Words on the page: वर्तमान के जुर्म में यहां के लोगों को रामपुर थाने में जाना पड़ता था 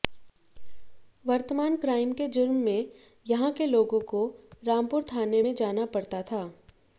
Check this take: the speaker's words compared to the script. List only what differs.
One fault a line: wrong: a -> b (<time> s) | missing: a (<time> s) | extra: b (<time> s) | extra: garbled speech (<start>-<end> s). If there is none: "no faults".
extra: क्राइम (1.8 s)